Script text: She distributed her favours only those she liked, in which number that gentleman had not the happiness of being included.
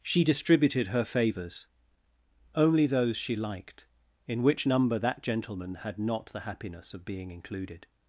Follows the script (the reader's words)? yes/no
yes